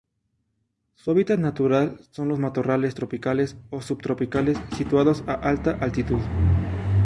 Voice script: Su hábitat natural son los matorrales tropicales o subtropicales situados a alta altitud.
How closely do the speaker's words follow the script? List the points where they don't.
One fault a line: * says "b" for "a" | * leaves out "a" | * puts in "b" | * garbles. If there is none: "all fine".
all fine